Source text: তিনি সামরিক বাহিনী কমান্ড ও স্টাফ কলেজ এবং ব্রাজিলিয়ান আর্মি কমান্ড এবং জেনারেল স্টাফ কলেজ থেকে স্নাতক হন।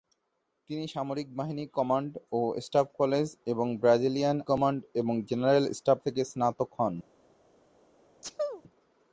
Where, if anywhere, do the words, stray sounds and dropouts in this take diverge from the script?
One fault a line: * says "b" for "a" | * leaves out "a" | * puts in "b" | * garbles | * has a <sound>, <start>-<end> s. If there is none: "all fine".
* leaves out "আর্মি"
* leaves out "কলেজ"
* has a sneeze, 8.2-8.6 s